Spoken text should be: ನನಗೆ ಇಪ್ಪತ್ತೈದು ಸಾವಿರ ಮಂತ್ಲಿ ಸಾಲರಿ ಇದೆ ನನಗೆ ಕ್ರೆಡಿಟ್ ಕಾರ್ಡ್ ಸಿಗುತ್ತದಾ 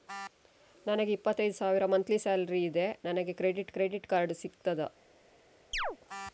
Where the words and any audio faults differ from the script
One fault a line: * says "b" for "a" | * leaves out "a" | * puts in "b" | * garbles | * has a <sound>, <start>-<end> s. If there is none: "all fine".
* puts in "ಕ್ರೆಡಿಟ್"
* has a chirp, 5.7-6.0 s